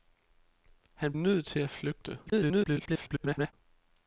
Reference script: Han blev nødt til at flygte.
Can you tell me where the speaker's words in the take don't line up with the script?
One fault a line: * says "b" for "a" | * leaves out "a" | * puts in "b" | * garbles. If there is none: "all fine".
* leaves out "blev"
* garbles